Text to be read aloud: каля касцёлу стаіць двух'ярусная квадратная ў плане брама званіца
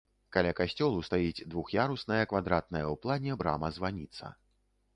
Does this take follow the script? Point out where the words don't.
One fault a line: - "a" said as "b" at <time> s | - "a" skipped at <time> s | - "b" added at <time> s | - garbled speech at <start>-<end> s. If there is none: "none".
none